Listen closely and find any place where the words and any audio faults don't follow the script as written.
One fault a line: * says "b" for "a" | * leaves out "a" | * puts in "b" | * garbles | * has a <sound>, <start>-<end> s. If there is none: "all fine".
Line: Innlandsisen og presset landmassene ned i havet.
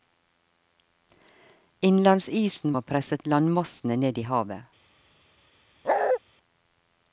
* has a bark, 5.8-6.2 s